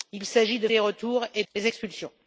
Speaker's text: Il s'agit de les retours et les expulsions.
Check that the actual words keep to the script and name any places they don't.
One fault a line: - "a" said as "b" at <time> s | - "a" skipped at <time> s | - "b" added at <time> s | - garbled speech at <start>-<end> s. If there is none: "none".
none